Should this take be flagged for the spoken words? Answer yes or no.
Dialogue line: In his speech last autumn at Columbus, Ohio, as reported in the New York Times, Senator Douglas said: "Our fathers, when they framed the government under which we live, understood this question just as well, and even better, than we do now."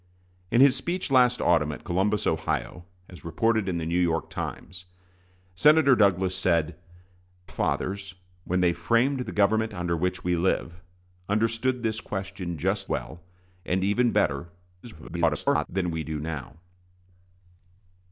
yes